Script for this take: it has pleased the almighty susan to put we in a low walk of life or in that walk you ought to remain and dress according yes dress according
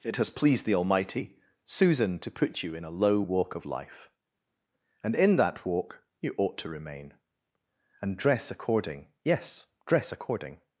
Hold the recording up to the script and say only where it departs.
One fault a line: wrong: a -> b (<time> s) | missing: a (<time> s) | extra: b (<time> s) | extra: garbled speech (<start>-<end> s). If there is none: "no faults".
wrong: we -> you (2.6 s)
wrong: or -> and (5.0 s)